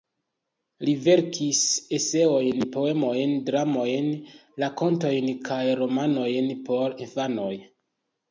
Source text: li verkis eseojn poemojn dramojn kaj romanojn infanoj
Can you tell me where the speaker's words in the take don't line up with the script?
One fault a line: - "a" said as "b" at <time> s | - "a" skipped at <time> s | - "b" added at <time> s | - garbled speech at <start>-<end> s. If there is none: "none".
- "rakontojn" added at 4.6 s
- "por" added at 6.7 s